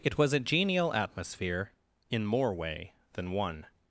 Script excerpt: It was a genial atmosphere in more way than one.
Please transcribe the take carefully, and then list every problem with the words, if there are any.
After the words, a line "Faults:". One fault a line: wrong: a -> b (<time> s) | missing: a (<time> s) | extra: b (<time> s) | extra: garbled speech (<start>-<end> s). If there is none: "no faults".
It was a genial atmosphere in more way than one.
Faults:
no faults